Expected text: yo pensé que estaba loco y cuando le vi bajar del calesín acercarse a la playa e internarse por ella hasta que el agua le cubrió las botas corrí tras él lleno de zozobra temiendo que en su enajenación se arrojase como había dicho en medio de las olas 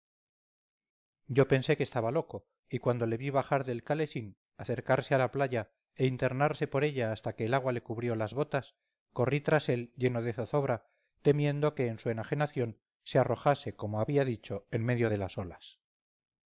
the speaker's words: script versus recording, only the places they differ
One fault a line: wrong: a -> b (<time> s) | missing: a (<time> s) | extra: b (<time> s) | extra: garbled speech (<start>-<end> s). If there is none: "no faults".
no faults